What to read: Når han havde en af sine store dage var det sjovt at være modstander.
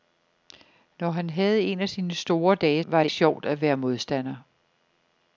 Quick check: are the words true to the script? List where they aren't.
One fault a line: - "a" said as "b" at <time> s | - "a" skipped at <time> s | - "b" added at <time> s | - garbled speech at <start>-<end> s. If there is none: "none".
none